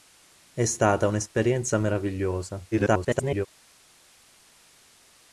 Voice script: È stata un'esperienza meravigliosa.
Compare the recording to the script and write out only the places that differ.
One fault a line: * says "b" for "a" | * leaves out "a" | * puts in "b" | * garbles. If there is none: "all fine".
* garbles